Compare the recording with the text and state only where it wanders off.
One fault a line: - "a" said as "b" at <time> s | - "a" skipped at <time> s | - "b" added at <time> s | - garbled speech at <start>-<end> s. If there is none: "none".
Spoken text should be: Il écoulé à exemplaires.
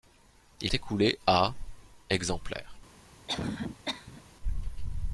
none